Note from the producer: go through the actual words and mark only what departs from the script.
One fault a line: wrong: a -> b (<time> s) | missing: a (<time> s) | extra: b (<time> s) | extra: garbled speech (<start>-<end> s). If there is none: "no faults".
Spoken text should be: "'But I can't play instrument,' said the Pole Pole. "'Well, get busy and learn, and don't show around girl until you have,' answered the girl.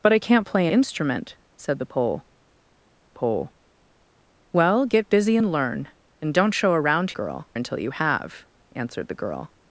no faults